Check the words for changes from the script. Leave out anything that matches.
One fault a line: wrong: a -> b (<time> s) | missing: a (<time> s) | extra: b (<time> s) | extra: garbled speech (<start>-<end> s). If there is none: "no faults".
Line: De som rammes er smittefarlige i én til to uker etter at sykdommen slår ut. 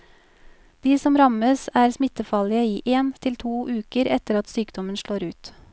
no faults